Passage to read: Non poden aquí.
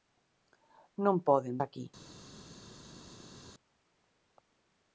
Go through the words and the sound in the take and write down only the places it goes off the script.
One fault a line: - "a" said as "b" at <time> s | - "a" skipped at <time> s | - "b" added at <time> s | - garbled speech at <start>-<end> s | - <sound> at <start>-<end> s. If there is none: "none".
none